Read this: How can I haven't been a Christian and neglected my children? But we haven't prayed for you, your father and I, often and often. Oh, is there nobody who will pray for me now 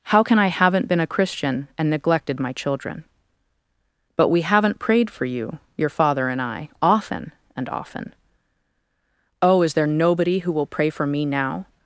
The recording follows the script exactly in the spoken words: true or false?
true